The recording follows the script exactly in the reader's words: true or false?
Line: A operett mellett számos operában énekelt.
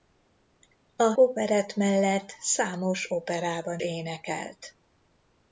true